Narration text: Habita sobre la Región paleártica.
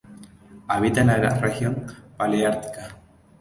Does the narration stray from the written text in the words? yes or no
yes